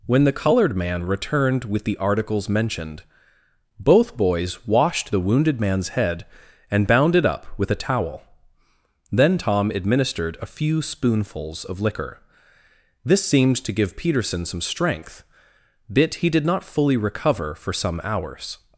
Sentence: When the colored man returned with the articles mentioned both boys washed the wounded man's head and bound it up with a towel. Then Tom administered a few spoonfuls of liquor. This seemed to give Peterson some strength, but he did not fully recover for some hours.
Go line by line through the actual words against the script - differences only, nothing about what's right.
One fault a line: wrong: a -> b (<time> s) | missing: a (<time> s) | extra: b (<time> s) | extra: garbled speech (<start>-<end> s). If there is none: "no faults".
wrong: but -> bit (15.9 s)